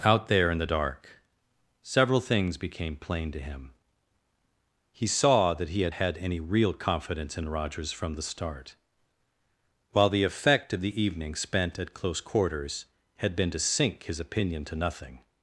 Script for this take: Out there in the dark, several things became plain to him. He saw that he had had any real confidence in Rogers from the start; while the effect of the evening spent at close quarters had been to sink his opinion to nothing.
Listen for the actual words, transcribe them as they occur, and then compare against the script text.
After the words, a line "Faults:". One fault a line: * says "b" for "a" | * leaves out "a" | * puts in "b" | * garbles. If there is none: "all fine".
Out there in the dark, several things became plain to him. He saw that he had had any real confidence in Rogers from the start; while the effect of the evening spent at close quarters had been to sink his opinion to nothing.
Faults:
all fine